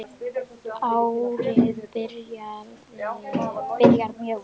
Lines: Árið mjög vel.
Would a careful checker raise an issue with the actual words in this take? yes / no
yes